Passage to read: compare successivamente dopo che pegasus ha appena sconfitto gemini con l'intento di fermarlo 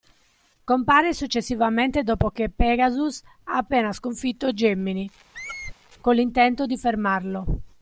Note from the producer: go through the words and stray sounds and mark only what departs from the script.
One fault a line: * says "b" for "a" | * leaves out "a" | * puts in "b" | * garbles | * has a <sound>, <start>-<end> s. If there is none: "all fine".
* has a squeak, 5.3-5.7 s